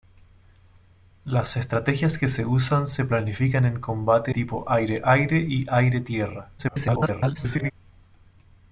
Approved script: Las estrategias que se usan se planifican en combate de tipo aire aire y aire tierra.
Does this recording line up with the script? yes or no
no